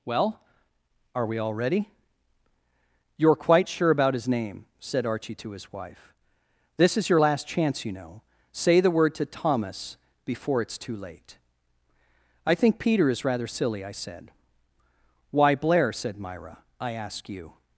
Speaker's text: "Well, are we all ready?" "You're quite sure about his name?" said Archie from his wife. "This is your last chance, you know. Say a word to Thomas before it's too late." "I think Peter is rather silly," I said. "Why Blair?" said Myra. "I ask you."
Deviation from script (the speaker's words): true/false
true